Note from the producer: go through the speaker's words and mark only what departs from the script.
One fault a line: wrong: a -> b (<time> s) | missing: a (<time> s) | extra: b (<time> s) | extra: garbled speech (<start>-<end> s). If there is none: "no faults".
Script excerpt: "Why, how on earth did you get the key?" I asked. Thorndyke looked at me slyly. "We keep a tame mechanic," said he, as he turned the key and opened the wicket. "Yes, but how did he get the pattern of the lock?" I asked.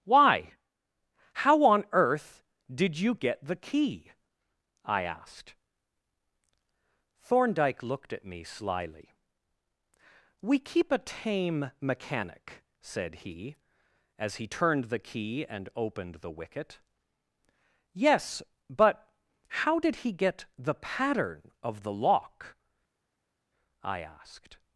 no faults